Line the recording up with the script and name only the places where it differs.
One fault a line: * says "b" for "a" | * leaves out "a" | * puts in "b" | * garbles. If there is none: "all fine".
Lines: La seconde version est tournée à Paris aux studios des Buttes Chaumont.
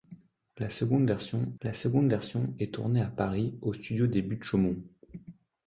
* puts in "la seconde version"